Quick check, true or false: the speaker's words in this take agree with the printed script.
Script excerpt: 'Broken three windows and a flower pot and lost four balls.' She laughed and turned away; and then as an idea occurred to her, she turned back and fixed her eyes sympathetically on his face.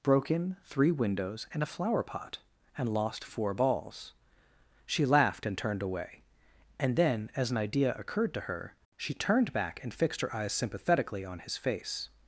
true